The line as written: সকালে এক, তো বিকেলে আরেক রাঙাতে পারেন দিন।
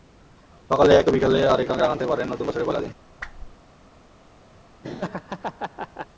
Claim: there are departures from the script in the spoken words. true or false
true